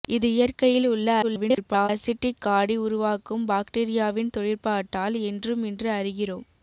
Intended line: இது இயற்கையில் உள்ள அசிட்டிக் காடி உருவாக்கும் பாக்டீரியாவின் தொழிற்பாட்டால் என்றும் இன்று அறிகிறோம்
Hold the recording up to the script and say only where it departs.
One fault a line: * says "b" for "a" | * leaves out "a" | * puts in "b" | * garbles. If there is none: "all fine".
* garbles